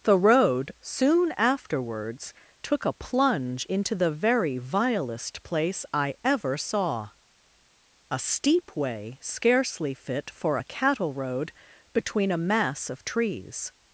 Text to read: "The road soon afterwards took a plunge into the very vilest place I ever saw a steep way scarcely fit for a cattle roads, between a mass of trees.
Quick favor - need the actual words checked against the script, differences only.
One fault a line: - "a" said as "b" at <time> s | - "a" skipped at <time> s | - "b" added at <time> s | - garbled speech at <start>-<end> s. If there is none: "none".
- "roads" said as "road" at 11.1 s